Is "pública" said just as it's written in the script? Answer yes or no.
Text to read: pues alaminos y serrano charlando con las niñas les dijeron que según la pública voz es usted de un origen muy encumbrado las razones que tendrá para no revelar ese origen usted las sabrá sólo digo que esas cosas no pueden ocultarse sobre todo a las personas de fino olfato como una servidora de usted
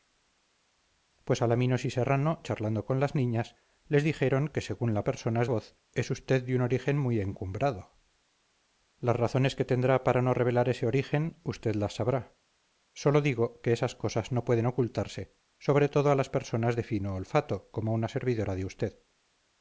no